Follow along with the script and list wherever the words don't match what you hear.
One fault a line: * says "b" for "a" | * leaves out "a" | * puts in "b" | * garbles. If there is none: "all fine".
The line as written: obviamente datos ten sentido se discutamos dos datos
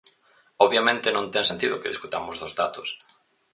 * says "non" for "datos"
* says "que" for "se"